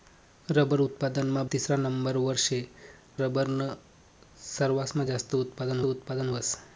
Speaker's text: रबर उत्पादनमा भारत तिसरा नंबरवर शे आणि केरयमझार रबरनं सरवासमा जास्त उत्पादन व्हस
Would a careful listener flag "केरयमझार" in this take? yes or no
yes